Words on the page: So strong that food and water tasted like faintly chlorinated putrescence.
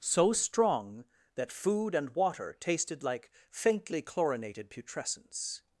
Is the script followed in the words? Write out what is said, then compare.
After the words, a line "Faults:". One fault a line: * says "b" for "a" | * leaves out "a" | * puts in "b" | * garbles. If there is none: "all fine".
So strong that food and water tasted like faintly chlorinated putrescence.
Faults:
all fine